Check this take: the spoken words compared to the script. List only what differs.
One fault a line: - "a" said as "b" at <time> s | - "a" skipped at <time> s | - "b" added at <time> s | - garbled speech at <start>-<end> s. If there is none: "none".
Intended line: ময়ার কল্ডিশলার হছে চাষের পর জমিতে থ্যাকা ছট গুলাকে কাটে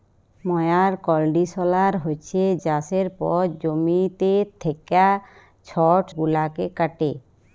none